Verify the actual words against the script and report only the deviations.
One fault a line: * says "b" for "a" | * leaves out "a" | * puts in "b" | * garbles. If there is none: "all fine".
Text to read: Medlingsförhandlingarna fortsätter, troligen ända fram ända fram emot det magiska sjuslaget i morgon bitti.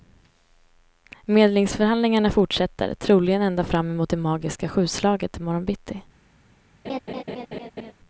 * leaves out "ända fram"